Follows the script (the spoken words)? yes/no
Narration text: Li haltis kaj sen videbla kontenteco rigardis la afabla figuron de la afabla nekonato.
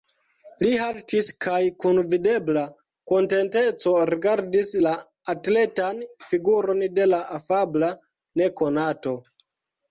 no